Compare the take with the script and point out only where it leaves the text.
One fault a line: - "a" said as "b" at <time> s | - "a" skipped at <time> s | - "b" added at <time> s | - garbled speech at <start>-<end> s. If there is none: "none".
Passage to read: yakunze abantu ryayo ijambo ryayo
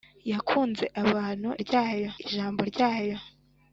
none